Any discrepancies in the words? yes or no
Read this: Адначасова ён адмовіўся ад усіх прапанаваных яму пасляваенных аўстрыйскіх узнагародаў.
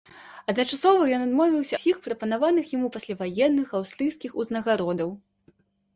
yes